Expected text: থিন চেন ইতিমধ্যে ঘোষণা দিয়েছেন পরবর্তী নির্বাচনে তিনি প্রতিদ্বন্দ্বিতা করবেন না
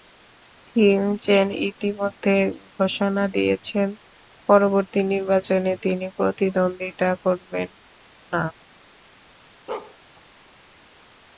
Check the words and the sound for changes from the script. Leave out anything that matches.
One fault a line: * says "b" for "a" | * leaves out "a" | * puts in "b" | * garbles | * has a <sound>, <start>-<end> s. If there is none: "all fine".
* has a bark, 9.7-10.0 s